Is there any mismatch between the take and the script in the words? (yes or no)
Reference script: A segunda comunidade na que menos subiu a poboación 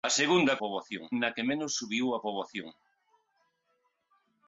yes